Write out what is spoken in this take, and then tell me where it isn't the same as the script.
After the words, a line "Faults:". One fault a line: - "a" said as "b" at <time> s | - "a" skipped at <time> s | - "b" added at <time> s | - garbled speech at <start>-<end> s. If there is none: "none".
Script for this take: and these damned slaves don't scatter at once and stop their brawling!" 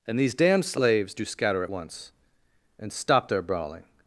and these damned slaves do scatter at once and stop their brawling!"
Faults:
- "don't" said as "do" at 1.1 s